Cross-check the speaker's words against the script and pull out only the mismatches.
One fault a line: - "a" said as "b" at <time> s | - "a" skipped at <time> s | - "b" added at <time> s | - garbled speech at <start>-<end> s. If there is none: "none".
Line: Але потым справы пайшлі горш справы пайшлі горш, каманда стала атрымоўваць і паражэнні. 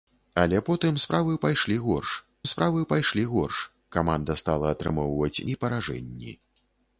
none